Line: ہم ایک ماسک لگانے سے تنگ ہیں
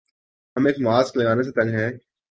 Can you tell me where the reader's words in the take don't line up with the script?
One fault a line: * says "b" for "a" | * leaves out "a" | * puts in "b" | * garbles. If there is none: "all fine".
all fine